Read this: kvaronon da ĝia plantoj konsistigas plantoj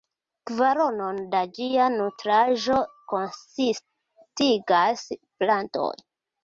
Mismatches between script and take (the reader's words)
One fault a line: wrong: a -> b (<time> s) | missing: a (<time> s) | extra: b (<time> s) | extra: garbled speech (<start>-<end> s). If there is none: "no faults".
wrong: plantoj -> nutraĵo (2.0 s)